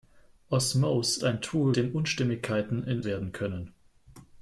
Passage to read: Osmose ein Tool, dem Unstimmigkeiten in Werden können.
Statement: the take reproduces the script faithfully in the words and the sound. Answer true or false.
true